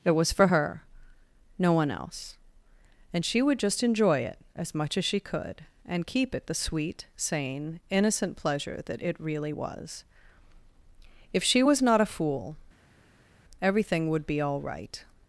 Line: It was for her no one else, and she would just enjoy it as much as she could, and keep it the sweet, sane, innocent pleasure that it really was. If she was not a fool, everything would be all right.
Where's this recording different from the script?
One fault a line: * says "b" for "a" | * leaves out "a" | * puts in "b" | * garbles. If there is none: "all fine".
all fine